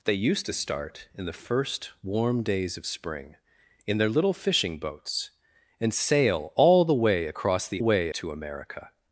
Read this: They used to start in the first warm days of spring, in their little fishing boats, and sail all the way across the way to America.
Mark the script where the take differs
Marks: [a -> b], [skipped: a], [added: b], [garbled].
They used to start in the first warm days of spring, in their little fishing boats, and sail all the way across the way to America.